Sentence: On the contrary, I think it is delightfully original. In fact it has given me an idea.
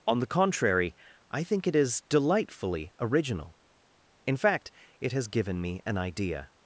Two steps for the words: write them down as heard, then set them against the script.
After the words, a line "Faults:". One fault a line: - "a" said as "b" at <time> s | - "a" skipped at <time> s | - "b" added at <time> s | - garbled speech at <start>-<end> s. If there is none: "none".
On the contrary, I think it is delightfully original. In fact it has given me an idea.
Faults:
none